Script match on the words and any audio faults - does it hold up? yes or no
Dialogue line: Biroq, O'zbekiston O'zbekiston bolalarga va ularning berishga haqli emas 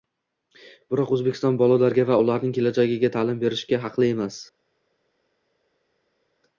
no